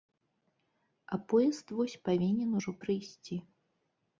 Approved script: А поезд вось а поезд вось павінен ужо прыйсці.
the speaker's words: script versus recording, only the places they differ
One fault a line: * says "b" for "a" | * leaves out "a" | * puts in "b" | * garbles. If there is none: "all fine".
* leaves out "а поезд вось"